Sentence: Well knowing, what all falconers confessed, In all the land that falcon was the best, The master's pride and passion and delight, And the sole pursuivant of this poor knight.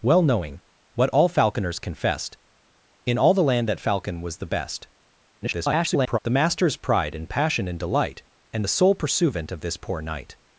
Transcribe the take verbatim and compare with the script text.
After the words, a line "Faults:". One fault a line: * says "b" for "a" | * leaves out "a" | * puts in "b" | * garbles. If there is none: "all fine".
Well knowing, what all falconers confessed, In all the land that falcon was the best, [garbled] The master's pride and passion and delight, And the sole pursuivant of this poor knight.
Faults:
* garbles